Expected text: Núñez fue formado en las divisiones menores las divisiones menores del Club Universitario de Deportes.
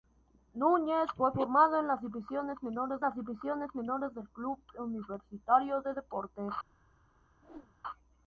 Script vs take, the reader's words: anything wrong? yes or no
no